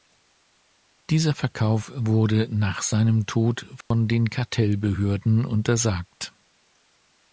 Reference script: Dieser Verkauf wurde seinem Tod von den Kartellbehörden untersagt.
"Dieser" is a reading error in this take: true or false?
false